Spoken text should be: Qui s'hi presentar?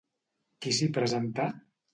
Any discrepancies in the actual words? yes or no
no